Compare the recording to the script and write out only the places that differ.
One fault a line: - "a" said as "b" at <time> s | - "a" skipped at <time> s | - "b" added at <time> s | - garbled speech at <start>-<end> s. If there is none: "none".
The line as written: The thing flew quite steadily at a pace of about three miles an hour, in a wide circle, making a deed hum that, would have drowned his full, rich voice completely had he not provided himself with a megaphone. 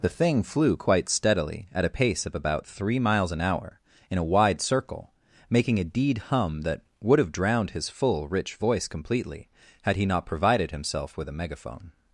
none